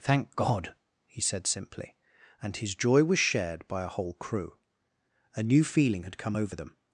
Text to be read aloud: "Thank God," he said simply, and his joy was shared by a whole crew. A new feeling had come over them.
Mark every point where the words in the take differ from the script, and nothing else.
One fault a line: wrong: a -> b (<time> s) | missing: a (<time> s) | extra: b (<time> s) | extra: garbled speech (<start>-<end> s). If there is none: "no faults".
no faults